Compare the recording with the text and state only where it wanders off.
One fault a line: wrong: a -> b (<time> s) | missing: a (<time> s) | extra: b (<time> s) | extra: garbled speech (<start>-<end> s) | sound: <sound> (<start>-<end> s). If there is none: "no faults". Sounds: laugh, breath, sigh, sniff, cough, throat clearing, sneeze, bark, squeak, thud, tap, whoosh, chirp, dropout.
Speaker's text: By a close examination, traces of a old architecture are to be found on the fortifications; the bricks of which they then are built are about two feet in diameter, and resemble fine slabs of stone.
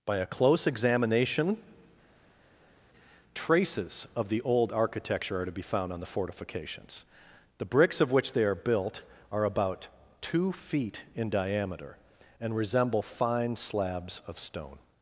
wrong: a -> the (4.3 s)
missing: then (8.4 s)